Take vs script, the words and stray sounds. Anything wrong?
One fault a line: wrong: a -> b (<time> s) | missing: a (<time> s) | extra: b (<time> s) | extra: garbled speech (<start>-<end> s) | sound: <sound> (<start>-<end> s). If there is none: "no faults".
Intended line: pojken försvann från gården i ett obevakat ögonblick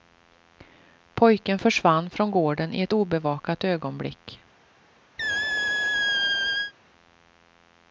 sound: squeak (5.2-6.7 s)